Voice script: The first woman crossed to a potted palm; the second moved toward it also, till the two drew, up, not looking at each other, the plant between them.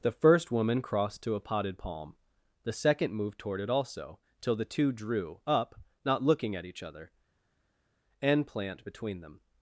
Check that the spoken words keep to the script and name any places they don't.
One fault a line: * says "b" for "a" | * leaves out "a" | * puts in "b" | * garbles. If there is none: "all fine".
* says "an" for "the"